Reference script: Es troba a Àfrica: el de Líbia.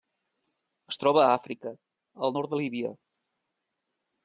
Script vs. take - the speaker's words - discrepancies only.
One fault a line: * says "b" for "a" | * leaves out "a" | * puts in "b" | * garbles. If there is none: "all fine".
* puts in "nord"